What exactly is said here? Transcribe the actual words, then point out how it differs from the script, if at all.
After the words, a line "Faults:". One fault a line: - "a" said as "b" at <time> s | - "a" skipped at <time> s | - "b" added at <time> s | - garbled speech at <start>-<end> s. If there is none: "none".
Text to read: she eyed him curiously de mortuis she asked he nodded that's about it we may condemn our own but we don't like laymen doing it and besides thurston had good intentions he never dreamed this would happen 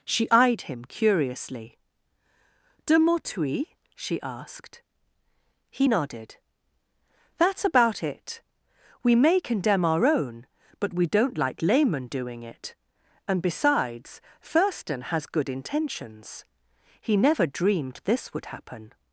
she eyed him curiously de mortuis she asked he nodded that's about it we may condemn our own but we don't like laymen doing it and besides thurston has good intentions he never dreamed this would happen
Faults:
- "had" said as "has" at 15.0 s